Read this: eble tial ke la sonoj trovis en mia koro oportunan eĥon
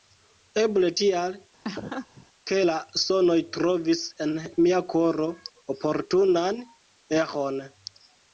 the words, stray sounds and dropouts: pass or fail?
fail